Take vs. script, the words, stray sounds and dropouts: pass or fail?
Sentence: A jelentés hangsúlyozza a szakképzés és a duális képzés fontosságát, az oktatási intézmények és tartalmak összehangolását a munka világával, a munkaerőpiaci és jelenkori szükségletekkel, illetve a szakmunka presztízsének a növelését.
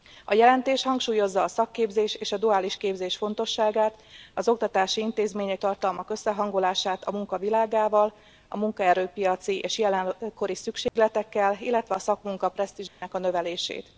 fail